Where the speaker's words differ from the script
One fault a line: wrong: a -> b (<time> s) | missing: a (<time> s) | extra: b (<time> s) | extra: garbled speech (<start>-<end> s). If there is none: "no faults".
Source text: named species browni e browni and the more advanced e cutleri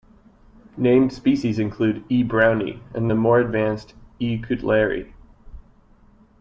wrong: browni -> include (1.6 s)